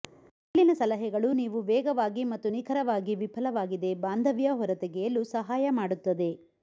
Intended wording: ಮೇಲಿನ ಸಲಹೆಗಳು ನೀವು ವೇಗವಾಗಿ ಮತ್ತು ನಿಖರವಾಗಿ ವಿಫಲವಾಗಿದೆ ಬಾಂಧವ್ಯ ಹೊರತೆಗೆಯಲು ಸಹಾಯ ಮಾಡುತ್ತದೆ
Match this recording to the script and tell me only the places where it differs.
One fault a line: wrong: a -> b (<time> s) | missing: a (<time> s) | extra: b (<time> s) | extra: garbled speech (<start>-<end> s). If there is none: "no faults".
no faults